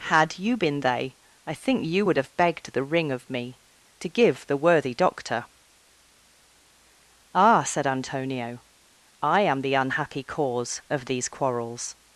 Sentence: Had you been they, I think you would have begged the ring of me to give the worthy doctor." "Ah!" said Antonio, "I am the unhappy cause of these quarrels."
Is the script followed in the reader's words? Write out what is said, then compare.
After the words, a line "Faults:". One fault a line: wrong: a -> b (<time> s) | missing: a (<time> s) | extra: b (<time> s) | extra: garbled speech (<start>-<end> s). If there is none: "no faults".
Had you been they, I think you would have begged the ring of me to give the worthy doctor." "Ah!" said Antonio, "I am the unhappy cause of these quarrels."
Faults:
no faults